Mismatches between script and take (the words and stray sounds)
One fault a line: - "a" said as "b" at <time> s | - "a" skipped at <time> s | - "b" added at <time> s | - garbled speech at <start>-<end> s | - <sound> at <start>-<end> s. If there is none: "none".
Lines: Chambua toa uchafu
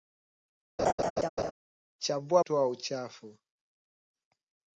- laugh at 0.8-1.5 s